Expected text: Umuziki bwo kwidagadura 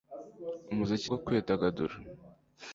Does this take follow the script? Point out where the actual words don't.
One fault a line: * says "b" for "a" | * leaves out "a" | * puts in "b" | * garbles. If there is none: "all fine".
all fine